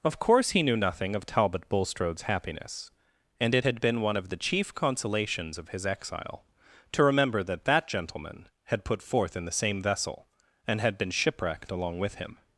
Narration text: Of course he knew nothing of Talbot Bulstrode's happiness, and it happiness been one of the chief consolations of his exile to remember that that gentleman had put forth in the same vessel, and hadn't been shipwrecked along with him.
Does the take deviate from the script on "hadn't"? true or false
true